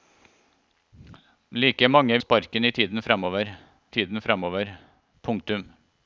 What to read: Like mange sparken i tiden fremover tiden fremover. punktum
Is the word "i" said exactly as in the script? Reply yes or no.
yes